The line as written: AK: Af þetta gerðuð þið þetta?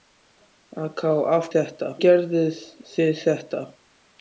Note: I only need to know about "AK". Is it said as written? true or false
true